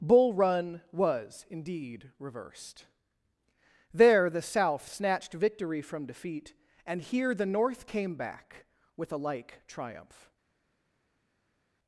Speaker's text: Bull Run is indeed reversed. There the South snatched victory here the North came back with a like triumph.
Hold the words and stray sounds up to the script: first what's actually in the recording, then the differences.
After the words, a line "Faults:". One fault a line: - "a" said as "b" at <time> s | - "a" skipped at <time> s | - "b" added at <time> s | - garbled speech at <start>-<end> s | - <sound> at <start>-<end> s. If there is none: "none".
Bull Run was indeed reversed. There the South snatched victory from defeat and here the North came back with a like triumph.
Faults:
- "is" said as "was" at 0.9 s
- "from defeat and" added at 5.8 s